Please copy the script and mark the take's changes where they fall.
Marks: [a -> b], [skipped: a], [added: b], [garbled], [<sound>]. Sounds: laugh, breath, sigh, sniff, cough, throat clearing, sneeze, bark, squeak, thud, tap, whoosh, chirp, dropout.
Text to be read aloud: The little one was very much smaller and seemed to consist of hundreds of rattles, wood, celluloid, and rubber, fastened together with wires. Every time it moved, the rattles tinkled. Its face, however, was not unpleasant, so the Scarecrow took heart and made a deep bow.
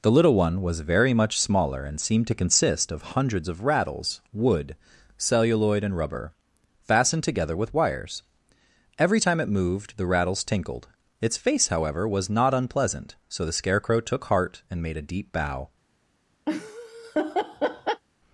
The little one was very much smaller and seemed to consist of hundreds of rattles, wood, celluloid, and rubber, fastened together with wires. Every time it moved, the rattles tinkled. Its face, however, was not unpleasant, so the Scarecrow took heart and made a deep bow. [laugh]